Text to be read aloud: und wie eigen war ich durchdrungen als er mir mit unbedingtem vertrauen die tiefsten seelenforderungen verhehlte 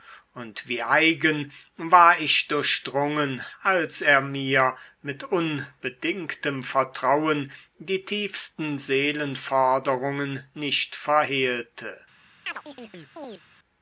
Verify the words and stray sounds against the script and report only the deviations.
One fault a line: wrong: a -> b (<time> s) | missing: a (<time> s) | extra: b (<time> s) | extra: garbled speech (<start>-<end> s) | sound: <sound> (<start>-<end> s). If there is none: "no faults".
extra: nicht (10.5 s)
sound: chirp (12.5-13.4 s)